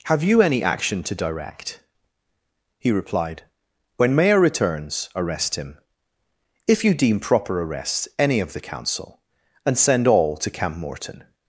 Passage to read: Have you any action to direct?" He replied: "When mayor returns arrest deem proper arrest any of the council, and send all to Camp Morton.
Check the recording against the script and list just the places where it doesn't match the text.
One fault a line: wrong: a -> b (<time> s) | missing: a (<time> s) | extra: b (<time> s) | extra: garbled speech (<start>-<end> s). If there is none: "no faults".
extra: him If you (5.5 s)